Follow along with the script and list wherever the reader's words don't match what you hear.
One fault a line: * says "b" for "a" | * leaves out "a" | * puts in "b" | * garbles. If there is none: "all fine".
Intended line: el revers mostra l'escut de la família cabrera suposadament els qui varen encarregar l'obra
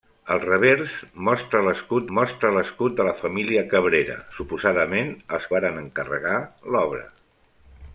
* puts in "mostra l'escut"
* leaves out "qui"